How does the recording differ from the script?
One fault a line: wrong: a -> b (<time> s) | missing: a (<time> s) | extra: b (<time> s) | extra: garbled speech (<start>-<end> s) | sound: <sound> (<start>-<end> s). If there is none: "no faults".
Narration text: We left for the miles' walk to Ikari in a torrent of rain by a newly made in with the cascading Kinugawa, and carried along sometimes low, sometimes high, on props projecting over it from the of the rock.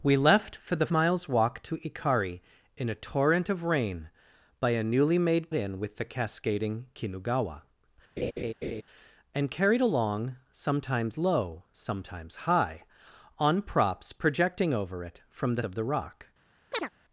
sound: laugh (8.2-8.8 s)
sound: chirp (16.7-16.9 s)